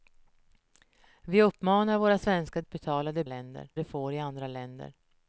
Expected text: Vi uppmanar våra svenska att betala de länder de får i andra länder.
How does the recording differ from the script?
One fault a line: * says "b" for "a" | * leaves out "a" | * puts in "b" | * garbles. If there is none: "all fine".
all fine